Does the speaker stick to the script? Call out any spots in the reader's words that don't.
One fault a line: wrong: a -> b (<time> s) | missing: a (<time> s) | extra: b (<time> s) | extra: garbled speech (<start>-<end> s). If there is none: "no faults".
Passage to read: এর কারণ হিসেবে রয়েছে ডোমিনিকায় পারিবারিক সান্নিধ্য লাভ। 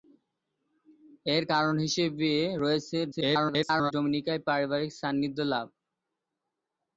extra: garbled speech (3.1-3.9 s)